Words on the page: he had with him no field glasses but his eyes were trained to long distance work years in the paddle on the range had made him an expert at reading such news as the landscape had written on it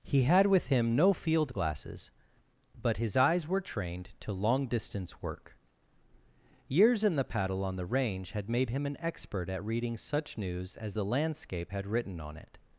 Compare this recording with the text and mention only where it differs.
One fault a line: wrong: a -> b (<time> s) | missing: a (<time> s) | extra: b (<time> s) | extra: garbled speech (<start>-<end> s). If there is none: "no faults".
no faults